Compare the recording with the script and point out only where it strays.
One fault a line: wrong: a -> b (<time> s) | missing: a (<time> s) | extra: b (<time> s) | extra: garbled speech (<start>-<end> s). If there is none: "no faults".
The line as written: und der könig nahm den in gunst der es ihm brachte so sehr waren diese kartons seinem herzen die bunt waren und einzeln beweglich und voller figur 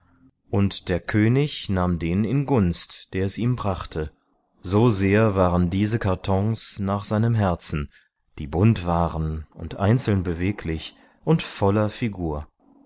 extra: nach (6.8 s)